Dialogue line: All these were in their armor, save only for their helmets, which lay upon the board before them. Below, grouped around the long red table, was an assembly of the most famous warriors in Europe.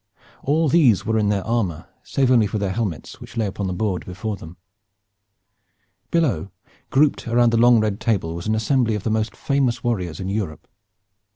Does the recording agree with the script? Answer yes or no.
yes